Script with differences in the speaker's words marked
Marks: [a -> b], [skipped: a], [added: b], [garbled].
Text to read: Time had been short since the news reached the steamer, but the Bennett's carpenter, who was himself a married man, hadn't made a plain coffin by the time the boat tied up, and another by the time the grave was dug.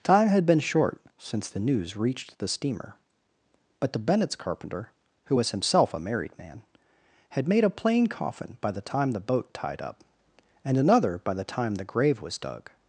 Time had been short since the news reached the steamer, but the Bennett's carpenter, who was himself a married man, [hadn't -> had] made a plain coffin by the time the boat tied up, and another by the time the grave was dug.